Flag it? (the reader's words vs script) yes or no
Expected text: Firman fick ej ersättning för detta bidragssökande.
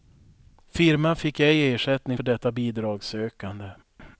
no